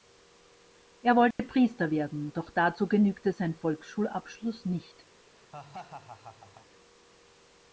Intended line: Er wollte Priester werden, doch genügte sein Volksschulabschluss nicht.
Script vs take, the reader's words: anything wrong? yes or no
yes